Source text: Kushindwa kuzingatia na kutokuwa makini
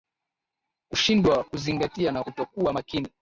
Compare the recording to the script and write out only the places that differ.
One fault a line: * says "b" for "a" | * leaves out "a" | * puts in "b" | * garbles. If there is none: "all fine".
all fine